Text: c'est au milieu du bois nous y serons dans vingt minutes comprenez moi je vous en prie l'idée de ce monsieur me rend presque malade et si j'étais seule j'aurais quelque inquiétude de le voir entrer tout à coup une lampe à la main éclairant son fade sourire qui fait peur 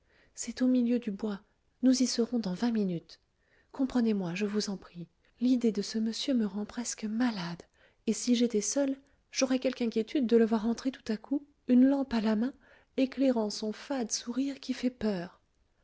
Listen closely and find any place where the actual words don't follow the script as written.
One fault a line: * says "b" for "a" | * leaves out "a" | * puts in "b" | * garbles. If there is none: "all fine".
all fine